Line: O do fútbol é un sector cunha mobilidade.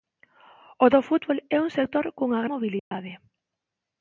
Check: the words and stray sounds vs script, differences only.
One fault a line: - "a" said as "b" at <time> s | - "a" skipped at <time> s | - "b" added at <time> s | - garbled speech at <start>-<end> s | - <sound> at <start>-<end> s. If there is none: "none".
- dropout at 2.8-2.9 s